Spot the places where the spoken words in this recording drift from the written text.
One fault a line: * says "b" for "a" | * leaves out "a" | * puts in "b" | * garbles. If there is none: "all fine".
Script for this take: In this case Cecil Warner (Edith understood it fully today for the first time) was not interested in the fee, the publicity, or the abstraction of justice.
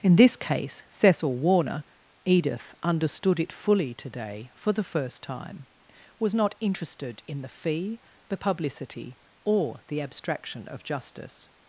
all fine